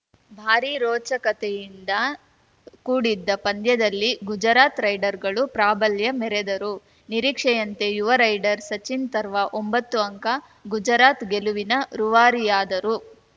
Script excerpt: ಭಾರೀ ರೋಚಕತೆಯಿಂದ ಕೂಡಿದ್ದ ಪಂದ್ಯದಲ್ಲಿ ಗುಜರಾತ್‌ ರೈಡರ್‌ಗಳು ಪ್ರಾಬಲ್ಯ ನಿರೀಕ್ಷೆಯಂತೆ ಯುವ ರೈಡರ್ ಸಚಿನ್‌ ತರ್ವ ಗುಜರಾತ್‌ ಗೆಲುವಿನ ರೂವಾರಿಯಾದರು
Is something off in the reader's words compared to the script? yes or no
yes